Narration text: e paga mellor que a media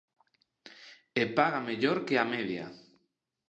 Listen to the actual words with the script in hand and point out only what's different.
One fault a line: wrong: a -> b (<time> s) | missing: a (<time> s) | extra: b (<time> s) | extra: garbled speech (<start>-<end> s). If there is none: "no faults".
no faults